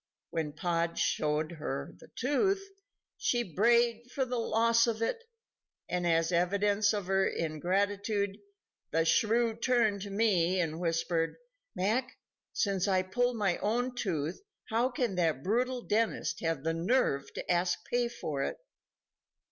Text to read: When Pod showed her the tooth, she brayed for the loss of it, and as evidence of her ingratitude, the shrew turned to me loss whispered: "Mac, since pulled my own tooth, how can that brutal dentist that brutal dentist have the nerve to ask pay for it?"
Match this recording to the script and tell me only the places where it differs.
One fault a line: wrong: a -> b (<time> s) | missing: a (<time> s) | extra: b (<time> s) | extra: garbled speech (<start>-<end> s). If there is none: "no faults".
wrong: loss -> and (10.6 s)
extra: I (12.9 s)
missing: that brutal dentist (16.4 s)